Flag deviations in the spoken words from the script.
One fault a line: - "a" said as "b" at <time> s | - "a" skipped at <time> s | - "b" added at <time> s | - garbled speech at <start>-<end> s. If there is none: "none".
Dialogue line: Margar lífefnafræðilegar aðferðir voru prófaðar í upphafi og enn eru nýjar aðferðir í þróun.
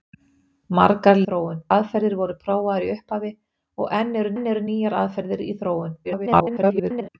- "lífefnafræðilegar" said as "þróun" at 1.3 s
- "enn eru" added at 4.3 s
- garbled speech at 6.0-7.1 s